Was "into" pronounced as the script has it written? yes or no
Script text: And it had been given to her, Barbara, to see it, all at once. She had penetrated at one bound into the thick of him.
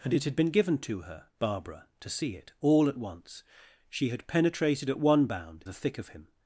no